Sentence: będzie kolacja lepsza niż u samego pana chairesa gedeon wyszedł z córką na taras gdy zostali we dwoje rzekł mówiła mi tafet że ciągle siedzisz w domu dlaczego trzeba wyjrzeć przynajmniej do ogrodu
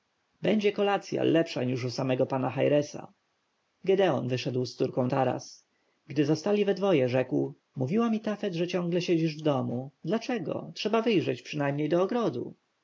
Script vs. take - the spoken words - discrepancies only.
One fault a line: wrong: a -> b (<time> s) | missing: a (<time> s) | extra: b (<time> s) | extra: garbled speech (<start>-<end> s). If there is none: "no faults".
missing: na (5.1 s)